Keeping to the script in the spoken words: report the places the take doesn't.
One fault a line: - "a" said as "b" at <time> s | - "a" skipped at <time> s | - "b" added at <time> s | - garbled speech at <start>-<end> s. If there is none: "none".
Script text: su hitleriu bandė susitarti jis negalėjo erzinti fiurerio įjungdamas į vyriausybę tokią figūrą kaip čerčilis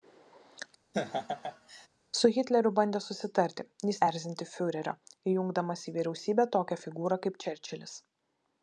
- "negalėjo" skipped at 4.0 s